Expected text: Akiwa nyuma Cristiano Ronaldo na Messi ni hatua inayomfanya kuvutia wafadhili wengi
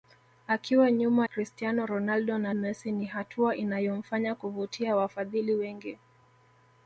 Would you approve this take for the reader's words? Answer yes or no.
yes